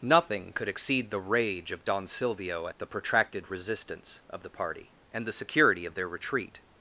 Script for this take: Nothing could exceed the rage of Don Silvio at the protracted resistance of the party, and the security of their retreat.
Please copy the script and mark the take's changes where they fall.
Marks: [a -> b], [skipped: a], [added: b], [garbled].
Nothing could exceed the rage of Don Silvio at the protracted resistance of the party, and the security of their retreat.